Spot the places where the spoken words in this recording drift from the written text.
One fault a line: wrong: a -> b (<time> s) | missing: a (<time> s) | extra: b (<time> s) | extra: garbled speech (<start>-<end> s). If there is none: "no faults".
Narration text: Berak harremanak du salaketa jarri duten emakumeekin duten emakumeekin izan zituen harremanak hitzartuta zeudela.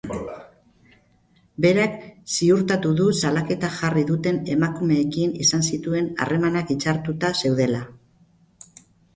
wrong: harremanak -> ziurtatu (2.4 s)
missing: duten emakumeekin (5.4 s)